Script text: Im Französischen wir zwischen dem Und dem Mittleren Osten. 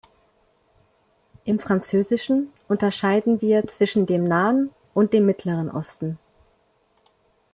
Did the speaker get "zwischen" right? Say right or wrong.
right